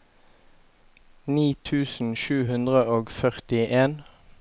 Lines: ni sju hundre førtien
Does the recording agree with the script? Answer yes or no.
no